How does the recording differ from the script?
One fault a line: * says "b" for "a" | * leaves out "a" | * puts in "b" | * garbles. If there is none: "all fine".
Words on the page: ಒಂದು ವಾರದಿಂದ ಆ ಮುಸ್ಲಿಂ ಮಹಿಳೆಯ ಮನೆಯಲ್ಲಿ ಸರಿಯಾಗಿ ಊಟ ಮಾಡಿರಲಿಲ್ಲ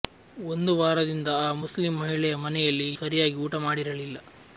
all fine